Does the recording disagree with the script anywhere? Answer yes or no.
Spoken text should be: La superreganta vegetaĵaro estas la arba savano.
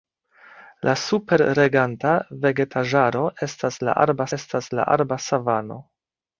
yes